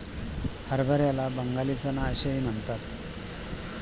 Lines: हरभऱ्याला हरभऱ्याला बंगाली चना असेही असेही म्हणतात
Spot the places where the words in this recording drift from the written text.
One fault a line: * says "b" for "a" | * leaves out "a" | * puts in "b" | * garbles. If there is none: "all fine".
* leaves out "हरभऱ्याला"
* leaves out "असेही"